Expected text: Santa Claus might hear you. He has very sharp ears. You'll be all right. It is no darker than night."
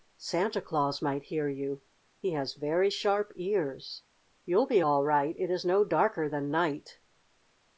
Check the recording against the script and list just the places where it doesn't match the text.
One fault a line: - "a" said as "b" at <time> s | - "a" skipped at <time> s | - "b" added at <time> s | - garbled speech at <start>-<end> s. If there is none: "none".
none